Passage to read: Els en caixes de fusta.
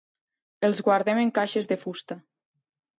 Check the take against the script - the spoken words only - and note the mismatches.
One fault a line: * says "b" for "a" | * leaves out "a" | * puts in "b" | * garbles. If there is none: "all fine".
* puts in "guardem"